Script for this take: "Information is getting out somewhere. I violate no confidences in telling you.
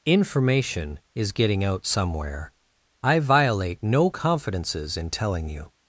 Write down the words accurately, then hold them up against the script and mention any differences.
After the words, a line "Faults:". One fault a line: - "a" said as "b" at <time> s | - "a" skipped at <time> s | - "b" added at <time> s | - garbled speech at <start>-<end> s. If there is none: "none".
"Information is getting out somewhere. I violate no confidences in telling you.
Faults:
none